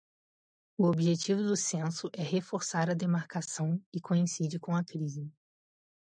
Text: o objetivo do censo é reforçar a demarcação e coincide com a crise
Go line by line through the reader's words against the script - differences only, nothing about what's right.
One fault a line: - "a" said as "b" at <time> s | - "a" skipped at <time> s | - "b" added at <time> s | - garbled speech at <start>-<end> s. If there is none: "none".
none